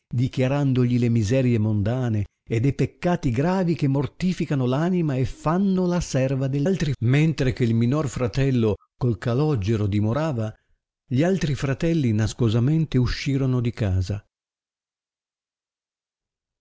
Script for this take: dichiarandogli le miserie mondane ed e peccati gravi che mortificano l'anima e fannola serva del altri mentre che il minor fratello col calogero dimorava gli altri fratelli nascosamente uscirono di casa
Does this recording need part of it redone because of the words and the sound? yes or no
no